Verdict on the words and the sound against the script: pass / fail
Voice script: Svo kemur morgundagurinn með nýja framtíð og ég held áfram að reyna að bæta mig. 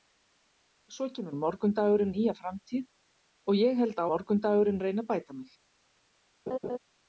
fail